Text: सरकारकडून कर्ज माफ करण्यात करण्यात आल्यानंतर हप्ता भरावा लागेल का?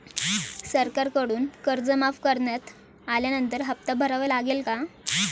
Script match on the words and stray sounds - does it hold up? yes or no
no